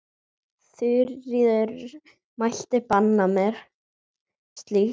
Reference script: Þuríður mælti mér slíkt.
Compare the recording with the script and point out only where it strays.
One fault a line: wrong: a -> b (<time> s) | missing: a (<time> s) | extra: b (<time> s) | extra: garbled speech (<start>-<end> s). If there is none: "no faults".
extra: banna (2.9 s)